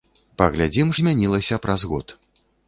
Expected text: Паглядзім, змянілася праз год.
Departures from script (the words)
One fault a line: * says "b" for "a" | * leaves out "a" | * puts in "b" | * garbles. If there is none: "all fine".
all fine